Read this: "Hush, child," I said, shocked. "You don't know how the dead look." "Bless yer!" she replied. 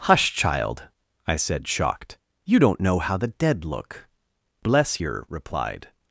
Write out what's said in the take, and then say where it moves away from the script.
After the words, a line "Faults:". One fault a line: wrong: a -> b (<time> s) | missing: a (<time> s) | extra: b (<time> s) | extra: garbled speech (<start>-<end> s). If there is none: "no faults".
"Hush, child," I said, shocked. "You don't know how the dead look." "Bless yer!" replied.
Faults:
missing: she (5.2 s)